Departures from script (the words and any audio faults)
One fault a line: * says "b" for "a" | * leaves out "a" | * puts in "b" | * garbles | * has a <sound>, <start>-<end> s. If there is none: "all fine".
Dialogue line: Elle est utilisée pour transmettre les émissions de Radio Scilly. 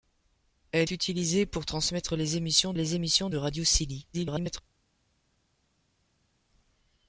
* leaves out "est"
* puts in "les émissions"
* garbles